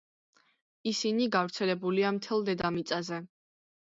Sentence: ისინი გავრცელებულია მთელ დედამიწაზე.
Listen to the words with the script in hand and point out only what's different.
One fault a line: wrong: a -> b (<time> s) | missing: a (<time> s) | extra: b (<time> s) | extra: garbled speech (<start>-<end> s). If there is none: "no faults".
no faults